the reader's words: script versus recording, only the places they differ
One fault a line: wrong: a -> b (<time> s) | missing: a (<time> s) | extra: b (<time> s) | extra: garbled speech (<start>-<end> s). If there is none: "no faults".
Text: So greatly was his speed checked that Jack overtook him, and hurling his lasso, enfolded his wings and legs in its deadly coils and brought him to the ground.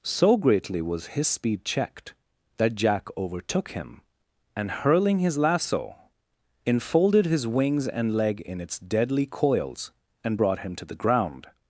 wrong: legs -> leg (8.2 s)